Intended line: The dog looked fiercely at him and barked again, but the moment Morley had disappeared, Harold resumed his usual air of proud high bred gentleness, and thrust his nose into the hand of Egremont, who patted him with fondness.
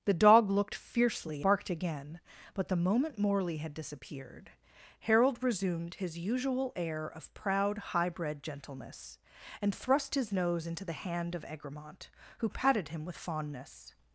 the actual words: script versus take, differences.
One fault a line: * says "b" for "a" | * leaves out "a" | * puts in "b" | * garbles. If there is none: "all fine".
* leaves out "at him and"